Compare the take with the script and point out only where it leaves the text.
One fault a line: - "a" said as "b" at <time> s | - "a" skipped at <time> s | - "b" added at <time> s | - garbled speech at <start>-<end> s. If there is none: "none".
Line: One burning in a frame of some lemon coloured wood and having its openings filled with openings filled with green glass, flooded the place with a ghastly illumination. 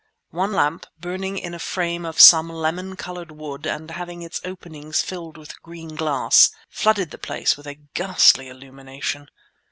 - "lamp" added at 0.5 s
- "openings filled with" skipped at 5.6 s